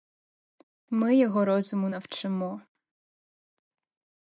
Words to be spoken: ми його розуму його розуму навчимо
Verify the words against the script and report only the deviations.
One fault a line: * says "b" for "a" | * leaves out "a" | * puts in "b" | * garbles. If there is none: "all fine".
* leaves out "його розуму"